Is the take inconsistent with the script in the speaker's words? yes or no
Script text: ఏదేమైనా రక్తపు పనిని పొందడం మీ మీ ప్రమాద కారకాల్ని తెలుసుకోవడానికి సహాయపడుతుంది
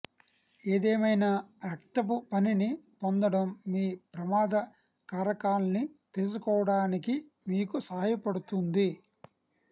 yes